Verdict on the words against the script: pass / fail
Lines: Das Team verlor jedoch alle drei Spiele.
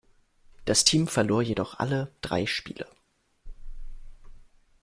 pass